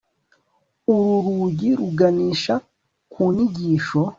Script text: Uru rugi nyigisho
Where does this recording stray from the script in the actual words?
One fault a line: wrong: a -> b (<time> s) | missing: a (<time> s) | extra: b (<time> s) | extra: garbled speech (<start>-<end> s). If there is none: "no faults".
extra: ruganisha ku (1.8 s)